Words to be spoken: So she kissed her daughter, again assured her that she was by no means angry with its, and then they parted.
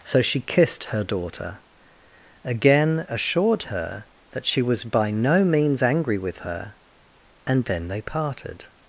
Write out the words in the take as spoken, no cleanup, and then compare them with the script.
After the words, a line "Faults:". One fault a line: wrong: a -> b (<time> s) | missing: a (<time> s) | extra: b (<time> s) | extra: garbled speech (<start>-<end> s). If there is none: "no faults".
So she kissed her daughter, again assured her that she was by no means angry with her, and then they parted.
Faults:
wrong: its -> her (6.4 s)